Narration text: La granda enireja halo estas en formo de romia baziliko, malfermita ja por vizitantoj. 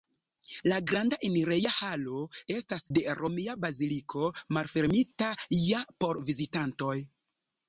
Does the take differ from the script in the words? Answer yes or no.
yes